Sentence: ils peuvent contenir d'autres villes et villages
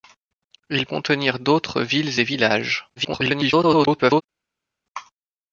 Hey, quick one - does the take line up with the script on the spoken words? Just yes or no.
no